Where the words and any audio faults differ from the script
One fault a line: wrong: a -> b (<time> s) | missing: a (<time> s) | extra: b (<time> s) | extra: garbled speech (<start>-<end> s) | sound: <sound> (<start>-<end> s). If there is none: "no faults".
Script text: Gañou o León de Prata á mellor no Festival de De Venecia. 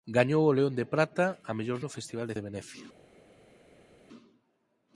no faults